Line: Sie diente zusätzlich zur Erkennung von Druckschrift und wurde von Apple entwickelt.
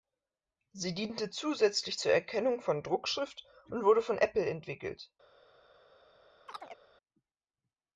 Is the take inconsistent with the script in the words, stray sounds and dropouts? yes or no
yes